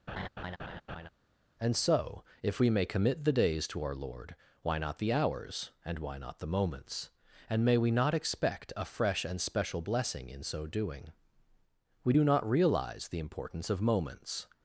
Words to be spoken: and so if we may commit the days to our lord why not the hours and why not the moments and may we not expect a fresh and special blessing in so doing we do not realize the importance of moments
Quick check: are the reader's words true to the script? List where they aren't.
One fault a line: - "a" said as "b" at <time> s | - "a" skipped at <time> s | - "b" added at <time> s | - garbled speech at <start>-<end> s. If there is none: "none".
none